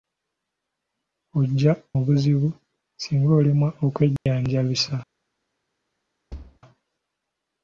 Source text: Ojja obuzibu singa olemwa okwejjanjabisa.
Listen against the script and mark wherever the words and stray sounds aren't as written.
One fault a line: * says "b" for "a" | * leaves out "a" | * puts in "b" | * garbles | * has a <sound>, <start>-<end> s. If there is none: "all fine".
* has a dropout, 4.2-4.3 s
* has a thud, 6.3-6.6 s